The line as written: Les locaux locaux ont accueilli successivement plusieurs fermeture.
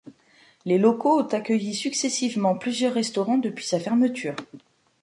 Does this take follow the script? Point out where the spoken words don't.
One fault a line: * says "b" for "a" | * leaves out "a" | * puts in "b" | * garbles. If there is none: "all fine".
* leaves out "locaux"
* puts in "restaurants depuis sa"